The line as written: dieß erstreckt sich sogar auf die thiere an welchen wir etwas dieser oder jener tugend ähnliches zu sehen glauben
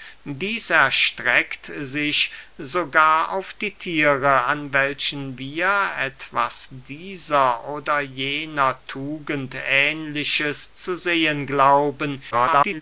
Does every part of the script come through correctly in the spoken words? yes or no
no